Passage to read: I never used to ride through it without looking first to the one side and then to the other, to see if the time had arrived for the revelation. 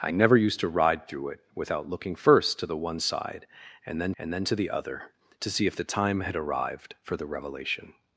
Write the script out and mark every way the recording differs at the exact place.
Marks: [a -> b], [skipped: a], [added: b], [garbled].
I never used to ride through it without looking first to the one side and then [added: and then] to the other, to see if the time had arrived for the revelation.